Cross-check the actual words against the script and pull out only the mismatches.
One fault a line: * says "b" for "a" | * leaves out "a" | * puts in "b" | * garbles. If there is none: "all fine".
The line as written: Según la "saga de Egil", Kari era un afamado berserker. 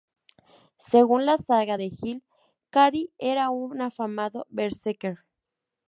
all fine